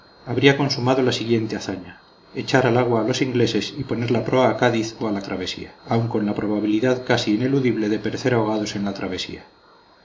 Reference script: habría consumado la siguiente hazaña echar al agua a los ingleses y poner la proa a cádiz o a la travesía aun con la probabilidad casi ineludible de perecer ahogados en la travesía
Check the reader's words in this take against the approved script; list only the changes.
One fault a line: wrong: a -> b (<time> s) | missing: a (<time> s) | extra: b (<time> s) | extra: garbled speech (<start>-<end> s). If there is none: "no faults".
no faults